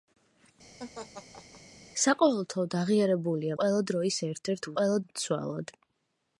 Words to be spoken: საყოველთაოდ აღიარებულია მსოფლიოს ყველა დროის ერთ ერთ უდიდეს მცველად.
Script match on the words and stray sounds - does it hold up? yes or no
no